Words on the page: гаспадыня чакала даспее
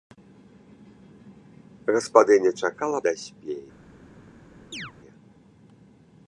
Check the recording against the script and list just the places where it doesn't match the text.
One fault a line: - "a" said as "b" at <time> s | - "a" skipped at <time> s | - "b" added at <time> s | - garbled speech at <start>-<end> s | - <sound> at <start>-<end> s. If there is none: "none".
- chirp at 4.7-4.9 s